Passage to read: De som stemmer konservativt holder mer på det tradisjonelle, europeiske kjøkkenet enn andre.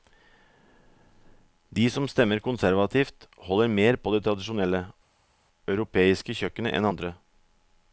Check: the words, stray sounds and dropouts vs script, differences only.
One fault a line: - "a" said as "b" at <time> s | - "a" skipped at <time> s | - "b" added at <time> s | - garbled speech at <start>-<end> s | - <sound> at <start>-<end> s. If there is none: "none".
none